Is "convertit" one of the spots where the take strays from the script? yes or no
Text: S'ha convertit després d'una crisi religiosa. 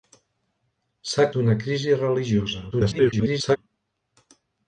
yes